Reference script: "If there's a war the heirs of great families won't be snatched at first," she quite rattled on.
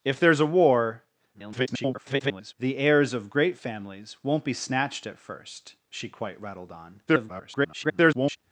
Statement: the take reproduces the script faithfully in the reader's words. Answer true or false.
false